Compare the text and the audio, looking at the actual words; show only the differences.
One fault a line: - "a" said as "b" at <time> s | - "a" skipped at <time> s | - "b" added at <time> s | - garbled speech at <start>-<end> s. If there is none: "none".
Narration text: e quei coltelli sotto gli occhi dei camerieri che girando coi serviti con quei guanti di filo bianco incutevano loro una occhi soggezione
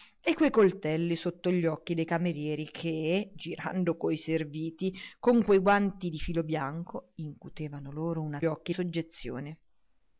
none